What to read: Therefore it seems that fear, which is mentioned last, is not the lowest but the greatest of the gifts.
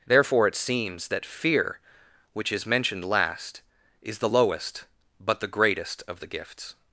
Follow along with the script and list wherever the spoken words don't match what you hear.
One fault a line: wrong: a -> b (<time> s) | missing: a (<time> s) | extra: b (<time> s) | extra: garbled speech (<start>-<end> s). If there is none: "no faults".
missing: not (4.2 s)